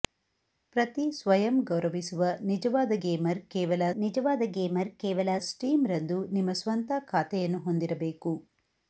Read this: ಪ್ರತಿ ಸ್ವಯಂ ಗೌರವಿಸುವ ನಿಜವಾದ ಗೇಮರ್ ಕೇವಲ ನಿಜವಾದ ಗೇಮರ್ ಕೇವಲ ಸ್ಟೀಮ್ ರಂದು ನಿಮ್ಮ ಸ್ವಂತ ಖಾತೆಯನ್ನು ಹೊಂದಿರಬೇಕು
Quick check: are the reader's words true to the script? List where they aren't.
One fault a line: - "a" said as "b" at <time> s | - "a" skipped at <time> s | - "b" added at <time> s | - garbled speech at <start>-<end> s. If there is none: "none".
none